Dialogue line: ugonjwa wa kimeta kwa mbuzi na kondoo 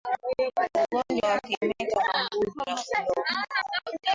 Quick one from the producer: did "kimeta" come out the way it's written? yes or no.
yes